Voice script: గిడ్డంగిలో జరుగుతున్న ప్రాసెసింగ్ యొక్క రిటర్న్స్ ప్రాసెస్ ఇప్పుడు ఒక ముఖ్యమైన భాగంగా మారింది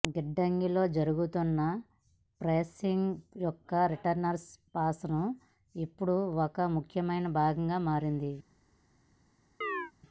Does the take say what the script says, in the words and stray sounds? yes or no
no